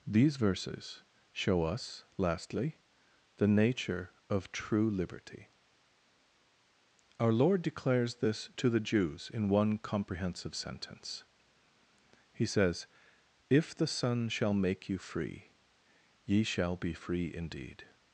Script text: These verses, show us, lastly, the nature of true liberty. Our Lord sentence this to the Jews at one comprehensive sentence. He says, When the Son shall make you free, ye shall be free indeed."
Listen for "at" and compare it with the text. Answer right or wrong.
wrong